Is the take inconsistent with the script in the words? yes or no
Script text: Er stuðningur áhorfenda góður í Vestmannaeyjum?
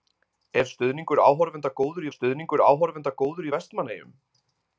yes